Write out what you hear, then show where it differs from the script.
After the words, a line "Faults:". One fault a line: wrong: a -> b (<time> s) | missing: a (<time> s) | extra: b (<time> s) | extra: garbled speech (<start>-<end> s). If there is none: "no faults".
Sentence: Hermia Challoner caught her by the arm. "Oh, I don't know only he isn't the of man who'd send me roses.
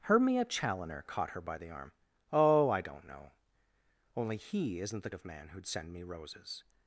Hermia Challoner caught her by the arm. "Oh, I don't know only he isn't the of man who'd send me roses.
Faults:
no faults